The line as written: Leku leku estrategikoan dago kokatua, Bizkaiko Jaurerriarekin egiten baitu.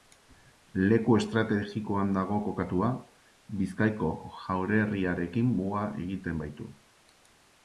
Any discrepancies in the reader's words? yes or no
yes